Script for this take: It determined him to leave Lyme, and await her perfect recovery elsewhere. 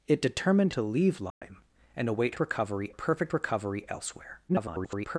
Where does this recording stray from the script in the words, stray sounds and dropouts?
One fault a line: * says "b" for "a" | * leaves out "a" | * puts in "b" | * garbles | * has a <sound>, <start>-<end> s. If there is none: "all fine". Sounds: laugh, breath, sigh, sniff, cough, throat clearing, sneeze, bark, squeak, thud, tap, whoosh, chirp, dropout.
* leaves out "him"
* has a dropout, 1.3-1.4 s
* says "recovery" for "her"
* garbles